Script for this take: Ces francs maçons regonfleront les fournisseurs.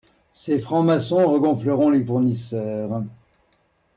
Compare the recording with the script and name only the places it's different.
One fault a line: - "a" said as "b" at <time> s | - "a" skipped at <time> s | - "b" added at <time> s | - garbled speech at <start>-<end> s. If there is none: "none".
none